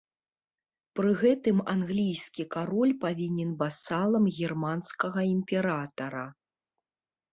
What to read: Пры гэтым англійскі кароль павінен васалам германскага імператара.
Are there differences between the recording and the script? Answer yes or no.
no